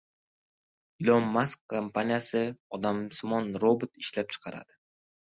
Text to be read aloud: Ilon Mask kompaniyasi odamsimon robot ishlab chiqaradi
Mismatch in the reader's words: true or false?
false